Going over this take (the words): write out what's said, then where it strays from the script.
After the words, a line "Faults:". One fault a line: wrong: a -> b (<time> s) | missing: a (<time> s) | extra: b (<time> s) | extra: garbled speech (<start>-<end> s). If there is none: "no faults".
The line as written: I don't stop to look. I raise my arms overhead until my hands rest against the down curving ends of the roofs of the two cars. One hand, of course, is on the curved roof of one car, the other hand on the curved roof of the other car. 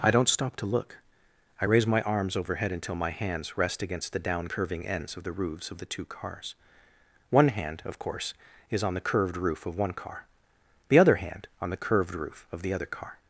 I don't stop to look. I raise my arms overhead until my hands rest against the down curving ends of the roofs of the two cars. One hand, of course, is on the curved roof of one car, the other hand on the curved roof of the other car.
Faults:
no faults